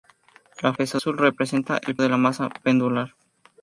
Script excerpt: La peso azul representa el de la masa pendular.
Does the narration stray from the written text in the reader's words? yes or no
no